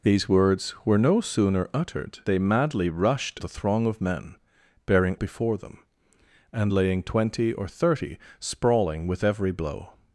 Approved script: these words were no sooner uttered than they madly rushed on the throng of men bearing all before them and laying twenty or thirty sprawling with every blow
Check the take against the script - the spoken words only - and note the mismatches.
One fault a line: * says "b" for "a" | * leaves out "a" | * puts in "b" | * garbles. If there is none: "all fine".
* leaves out "than"
* leaves out "on"
* leaves out "all"